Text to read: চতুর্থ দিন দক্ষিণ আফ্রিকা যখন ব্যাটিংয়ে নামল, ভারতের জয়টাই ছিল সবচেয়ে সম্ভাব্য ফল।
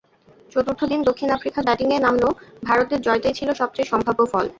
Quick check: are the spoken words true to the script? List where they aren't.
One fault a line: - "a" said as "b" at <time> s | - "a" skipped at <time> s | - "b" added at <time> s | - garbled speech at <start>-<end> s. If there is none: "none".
- "যখন" skipped at 1.6 s